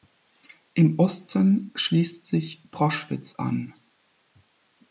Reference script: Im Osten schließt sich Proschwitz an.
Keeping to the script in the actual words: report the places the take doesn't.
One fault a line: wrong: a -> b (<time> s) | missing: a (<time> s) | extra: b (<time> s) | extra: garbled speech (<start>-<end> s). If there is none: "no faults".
no faults